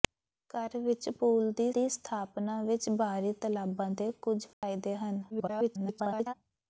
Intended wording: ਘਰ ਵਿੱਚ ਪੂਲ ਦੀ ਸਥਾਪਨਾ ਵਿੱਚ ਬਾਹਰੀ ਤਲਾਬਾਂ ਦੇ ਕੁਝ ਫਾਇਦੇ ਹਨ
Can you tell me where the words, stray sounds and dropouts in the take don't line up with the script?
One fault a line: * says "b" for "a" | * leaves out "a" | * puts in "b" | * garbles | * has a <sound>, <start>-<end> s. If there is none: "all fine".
* puts in "ਦੀ"
* has a dropout, 4.5-4.6 s
* garbles